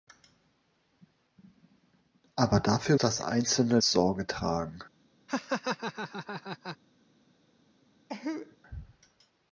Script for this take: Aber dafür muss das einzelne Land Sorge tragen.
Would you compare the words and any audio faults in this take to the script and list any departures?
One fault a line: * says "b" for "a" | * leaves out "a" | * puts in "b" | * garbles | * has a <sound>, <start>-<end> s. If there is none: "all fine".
* leaves out "muss"
* leaves out "Land"
* has a laugh, 5.3-6.8 s
* has a cough, 8.1-8.6 s